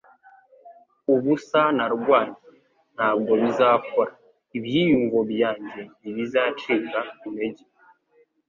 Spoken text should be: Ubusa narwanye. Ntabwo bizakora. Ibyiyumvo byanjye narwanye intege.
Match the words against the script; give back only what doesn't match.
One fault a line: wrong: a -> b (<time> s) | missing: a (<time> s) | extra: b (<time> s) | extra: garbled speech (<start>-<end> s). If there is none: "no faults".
wrong: narwanye -> ntibizacika (6.0 s)